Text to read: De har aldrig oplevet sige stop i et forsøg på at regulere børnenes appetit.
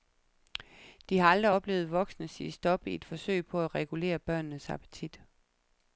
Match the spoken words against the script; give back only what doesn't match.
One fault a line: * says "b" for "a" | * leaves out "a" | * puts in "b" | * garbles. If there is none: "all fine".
* puts in "voksne"